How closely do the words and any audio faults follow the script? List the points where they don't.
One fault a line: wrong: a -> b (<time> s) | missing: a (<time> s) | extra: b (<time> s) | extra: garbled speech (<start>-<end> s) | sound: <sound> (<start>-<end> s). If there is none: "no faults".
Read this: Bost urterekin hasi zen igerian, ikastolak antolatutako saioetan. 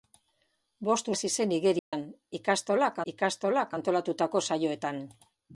missing: urterekin (1.1 s)
sound: dropout (1.8-1.9 s)
extra: ikastolak (3.1 s)